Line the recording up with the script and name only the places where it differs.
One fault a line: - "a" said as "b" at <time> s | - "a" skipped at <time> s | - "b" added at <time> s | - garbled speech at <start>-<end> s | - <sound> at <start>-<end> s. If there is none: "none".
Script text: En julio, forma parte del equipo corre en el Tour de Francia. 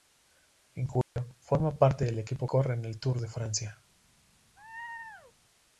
- dropout at 1.0-1.2 s
- laugh at 4.6-5.3 s